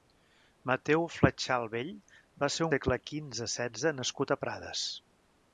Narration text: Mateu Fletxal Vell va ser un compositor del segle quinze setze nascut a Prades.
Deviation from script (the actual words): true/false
true